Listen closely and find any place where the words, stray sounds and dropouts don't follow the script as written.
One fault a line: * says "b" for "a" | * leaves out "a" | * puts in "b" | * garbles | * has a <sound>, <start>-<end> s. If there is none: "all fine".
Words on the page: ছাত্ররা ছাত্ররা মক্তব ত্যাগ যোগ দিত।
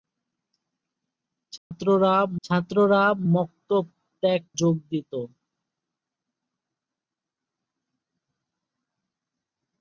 * has a dropout, 1.6-1.7 s